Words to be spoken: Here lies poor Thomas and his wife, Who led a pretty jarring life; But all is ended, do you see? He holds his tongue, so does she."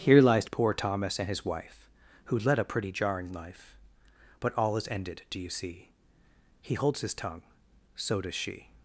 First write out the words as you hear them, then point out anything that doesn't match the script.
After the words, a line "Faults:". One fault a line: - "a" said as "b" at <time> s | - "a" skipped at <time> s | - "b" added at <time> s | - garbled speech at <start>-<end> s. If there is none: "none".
Here lies poor Thomas and his wife, Who led a pretty jarring life; But all is ended, do you see? He holds his tongue, so does she."
Faults:
none